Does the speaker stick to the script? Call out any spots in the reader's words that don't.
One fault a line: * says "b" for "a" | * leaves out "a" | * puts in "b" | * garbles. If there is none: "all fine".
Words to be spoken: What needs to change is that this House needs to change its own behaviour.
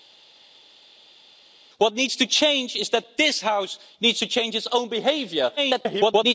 * garbles